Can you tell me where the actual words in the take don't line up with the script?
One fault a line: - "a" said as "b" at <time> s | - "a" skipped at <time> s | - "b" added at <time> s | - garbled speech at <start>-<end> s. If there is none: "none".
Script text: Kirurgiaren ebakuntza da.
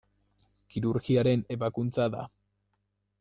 none